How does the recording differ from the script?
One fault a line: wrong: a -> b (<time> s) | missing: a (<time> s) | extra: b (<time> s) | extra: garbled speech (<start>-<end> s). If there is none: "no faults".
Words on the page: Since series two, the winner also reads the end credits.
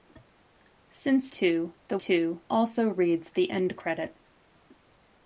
missing: series (1.3 s)
wrong: winner -> two (2.0 s)